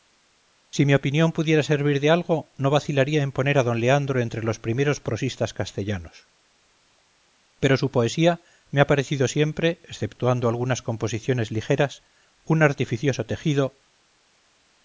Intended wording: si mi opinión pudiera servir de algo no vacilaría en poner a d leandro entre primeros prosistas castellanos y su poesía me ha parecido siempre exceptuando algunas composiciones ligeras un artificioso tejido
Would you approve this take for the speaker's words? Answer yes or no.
no